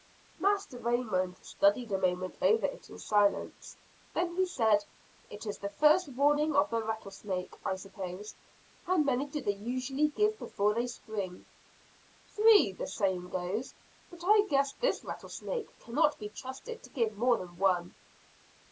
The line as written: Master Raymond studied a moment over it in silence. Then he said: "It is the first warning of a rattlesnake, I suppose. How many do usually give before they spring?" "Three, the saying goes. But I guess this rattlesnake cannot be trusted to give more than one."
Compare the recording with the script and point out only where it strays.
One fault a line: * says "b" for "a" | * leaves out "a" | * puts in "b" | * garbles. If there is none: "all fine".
* says "the" for "a"
* puts in "they"